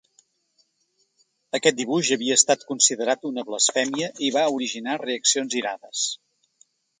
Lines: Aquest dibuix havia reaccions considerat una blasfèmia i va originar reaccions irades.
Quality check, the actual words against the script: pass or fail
fail